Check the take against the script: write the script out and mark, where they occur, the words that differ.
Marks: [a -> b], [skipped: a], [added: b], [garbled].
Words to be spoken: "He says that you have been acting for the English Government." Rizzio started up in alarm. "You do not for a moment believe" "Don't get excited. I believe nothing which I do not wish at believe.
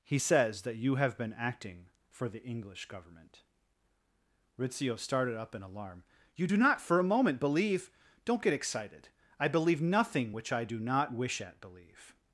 "He says that you have been acting for the English Government." Rizzio started up in alarm. "You do not for a moment believe" "Don't get excited. I believe nothing which I do not wish at believe.